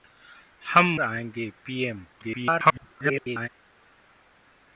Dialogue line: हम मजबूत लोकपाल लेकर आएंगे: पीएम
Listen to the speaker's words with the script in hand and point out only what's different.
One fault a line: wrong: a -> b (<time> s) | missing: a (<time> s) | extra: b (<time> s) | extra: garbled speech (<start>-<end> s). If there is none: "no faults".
missing: मजबूत लोकपाल लेकर (0.9 s)
extra: garbled speech (2.1-3.5 s)